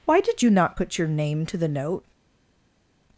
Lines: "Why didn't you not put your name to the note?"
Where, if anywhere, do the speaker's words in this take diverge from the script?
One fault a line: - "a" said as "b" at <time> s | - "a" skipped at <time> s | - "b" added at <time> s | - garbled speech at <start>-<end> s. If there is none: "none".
- "didn't" said as "did" at 0.2 s